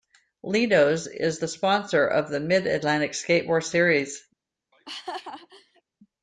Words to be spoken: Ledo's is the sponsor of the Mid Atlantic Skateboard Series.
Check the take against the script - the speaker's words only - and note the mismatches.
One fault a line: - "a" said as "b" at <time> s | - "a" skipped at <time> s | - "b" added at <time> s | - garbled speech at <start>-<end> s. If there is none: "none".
none